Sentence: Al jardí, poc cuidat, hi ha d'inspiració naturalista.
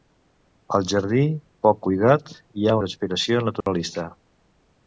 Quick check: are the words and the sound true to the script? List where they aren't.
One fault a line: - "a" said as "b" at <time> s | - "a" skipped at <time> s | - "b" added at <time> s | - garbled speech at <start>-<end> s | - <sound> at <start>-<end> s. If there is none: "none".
- dropout at 3.6-3.7 s